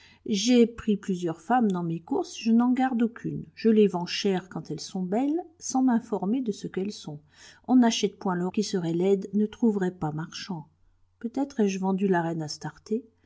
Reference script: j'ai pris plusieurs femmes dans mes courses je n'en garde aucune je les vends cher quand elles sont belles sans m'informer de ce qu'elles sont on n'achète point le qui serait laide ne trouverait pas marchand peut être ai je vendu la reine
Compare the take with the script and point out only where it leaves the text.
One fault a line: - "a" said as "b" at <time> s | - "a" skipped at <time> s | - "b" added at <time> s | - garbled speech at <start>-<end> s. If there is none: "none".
none